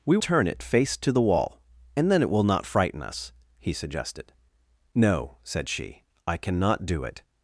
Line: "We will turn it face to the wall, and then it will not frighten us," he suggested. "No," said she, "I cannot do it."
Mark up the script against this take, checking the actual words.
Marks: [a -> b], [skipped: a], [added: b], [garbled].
"We [skipped: will] turn it face to the wall, and then it will not frighten us," he suggested. "No," said she, "I cannot do it."